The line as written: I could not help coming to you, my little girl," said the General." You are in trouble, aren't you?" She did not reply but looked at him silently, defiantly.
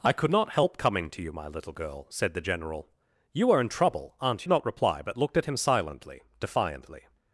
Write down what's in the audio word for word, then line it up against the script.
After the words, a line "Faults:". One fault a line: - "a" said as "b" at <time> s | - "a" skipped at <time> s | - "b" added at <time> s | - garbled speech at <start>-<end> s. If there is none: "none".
I could not help coming to you, my little girl," said the General." You are in trouble, aren't not reply but looked at him silently, defiantly.
Faults:
- "you She did" skipped at 4.5 s